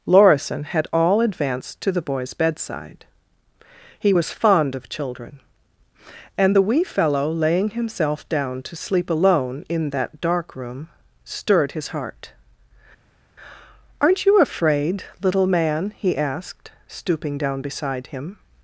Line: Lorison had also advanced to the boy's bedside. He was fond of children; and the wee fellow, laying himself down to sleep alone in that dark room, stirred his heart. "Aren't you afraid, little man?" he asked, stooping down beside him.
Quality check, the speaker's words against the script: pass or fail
fail